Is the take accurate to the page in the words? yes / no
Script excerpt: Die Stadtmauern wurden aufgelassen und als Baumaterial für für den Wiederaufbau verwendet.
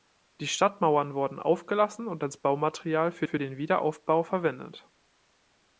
yes